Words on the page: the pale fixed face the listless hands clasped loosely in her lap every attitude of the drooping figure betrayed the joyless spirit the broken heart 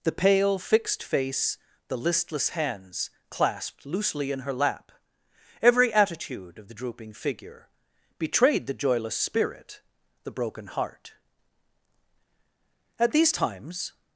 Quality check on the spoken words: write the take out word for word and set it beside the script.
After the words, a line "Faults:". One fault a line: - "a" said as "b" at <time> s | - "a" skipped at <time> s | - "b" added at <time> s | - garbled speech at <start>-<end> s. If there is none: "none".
the pale fixed face the listless hands clasped loosely in her lap every attitude of the drooping figure betrayed the joyless spirit the broken heart at these times
Faults:
- "at these times" added at 13.0 s